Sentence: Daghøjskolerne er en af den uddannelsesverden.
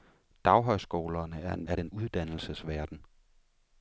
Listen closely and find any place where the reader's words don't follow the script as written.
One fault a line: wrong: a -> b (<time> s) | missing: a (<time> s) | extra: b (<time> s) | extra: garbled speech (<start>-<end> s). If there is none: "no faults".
no faults